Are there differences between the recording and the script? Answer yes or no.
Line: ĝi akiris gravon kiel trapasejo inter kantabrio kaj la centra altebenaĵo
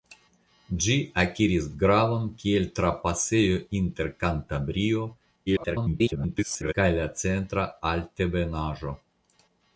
yes